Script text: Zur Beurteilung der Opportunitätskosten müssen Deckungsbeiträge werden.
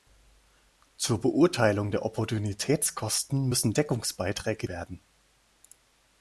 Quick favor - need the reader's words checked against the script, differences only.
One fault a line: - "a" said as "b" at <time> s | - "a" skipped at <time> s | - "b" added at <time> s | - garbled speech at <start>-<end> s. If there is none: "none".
none